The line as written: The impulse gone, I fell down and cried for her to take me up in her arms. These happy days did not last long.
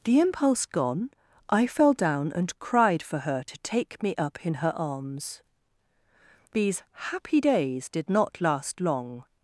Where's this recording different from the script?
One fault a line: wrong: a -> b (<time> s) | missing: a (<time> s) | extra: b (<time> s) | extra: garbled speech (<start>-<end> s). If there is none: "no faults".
no faults